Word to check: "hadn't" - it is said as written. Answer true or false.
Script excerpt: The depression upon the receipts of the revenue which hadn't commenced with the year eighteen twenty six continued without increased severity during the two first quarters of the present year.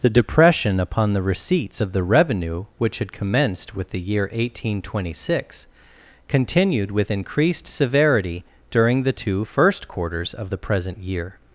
false